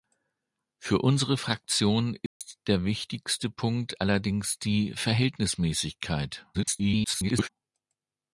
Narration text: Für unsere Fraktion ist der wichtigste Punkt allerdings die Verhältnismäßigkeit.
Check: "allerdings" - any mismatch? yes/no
no